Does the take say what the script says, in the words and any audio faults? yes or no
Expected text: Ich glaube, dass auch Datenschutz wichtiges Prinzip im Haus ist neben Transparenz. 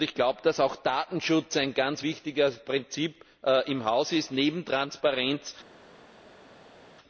no